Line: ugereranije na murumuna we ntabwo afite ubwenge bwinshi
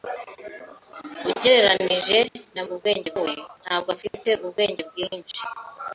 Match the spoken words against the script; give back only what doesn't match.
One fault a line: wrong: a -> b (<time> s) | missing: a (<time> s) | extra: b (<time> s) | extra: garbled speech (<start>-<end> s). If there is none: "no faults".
wrong: murumuna -> ubwenge (2.7 s)